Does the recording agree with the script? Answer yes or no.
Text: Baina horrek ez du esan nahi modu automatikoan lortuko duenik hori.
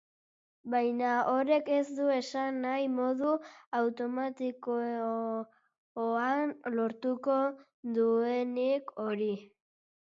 yes